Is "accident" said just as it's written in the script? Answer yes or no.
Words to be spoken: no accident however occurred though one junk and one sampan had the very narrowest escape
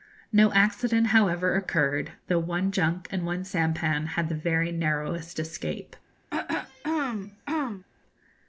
yes